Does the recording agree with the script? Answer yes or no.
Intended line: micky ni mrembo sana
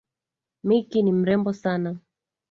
yes